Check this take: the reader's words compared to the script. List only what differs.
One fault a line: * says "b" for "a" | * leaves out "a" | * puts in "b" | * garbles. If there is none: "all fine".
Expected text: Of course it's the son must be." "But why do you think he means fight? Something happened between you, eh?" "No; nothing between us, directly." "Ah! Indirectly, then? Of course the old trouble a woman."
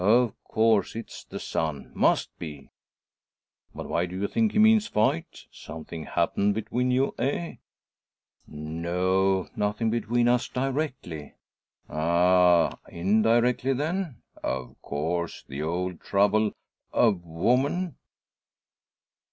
all fine